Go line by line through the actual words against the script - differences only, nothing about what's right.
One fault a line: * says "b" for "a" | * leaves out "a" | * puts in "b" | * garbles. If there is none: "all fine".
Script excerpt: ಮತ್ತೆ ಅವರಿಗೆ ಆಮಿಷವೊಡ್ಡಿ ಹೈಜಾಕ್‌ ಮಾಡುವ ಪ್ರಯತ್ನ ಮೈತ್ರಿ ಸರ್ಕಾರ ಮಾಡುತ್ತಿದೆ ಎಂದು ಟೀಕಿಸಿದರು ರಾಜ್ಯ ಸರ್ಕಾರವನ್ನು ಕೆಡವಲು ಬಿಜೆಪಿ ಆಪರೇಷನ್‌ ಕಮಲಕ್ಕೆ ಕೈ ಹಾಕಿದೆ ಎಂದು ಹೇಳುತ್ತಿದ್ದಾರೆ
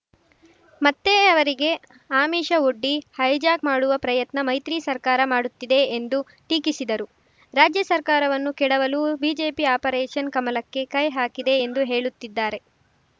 all fine